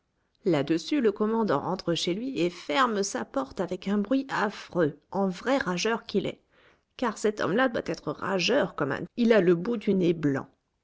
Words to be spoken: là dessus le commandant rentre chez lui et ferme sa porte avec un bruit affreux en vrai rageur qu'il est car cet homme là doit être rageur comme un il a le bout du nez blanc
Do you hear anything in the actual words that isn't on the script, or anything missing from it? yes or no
no